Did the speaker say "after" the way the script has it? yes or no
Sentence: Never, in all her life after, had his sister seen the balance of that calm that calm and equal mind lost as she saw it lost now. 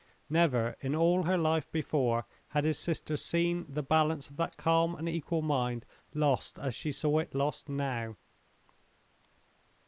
no